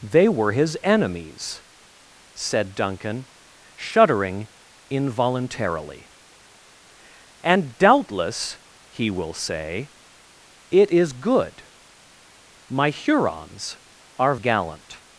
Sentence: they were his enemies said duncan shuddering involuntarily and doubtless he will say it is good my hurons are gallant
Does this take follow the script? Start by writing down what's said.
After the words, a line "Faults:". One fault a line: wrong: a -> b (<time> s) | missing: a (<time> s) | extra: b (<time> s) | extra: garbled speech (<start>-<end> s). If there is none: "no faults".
they were his enemies said duncan shuddering involuntarily and doubtless he will say it is good my hurons are gallant
Faults:
no faults